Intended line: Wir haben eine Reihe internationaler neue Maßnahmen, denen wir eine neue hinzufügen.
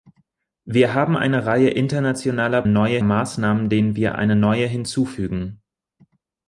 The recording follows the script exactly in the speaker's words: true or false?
true